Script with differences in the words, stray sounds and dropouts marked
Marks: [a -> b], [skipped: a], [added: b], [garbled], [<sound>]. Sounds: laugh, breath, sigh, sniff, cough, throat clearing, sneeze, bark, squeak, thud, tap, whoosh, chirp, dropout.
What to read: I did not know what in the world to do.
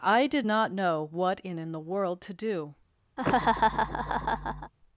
I did not know what in [added: in] the world to do. [laugh]